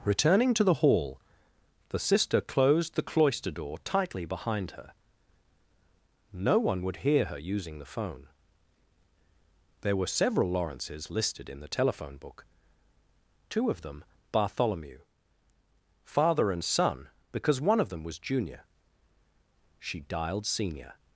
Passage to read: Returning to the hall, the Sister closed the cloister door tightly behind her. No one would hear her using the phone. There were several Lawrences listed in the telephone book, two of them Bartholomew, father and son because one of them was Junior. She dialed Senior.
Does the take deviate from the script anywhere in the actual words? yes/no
no